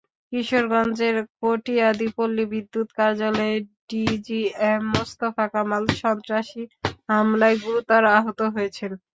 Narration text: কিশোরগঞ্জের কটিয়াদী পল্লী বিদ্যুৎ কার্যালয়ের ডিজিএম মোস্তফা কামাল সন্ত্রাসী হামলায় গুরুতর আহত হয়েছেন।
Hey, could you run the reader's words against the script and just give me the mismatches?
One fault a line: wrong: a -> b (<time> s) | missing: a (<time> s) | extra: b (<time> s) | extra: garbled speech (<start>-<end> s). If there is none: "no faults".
no faults